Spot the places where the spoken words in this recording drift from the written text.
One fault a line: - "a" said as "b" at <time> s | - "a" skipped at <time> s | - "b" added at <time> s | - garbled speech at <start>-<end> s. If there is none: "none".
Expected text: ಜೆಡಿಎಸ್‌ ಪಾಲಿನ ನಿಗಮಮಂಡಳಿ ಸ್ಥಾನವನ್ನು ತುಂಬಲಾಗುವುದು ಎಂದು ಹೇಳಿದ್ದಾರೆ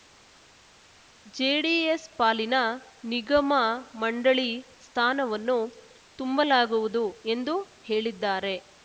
none